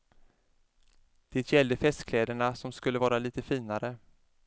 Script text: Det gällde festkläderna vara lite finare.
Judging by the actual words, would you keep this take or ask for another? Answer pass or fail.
fail